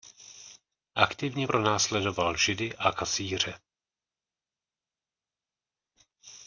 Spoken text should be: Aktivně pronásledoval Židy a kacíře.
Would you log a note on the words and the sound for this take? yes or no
no